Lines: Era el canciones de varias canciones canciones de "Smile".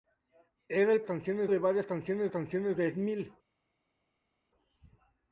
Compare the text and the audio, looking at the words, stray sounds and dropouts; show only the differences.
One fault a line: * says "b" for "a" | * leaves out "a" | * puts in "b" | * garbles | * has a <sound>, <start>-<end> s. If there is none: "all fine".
all fine